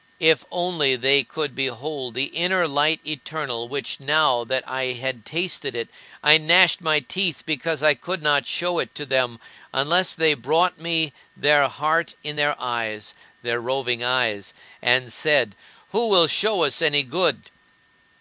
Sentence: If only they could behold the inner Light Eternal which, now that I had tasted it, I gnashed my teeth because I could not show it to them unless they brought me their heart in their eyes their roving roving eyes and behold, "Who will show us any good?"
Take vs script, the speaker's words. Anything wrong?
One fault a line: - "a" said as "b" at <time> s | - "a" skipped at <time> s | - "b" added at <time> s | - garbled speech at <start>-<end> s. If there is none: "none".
- "roving" skipped at 14.0 s
- "behold" said as "said" at 15.1 s